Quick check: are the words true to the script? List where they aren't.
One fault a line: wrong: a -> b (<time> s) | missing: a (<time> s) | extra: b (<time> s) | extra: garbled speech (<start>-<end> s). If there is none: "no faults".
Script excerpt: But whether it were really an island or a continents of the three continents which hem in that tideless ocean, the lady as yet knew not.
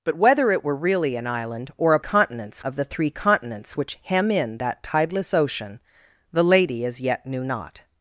no faults